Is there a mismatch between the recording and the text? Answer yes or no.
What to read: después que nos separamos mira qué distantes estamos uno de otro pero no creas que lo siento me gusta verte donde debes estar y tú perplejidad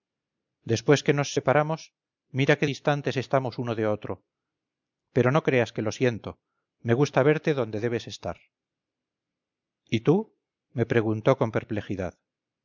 yes